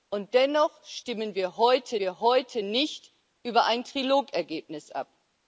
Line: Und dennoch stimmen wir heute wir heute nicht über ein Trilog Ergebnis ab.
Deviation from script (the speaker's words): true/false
false